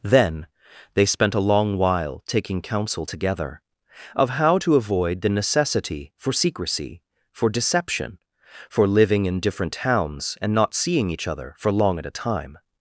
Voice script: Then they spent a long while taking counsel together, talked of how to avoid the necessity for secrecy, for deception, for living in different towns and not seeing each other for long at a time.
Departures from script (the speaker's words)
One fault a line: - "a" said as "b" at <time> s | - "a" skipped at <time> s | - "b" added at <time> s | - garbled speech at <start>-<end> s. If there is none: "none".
- "talked" skipped at 3.6 s